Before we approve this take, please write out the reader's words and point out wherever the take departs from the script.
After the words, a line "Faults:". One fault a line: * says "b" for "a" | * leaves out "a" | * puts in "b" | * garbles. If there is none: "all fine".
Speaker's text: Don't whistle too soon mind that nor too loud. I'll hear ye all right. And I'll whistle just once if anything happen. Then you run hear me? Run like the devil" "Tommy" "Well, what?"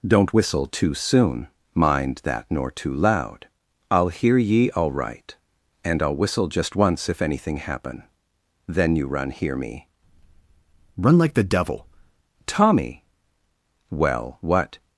Don't whistle too soon mind that nor too loud. I'll hear ye all right. And I'll whistle just once if anything happen. Then you run hear me? Run like the devil" "Tommy" "Well, what?"
Faults:
all fine